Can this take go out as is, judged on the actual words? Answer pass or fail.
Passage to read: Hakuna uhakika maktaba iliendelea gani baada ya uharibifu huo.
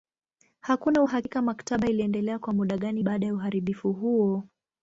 fail